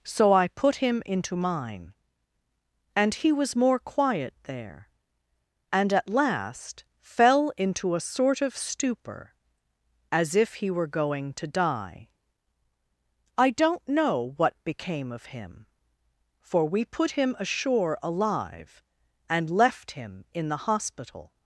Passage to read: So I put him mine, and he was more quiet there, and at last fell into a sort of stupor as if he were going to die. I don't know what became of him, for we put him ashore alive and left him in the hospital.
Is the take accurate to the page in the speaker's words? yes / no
no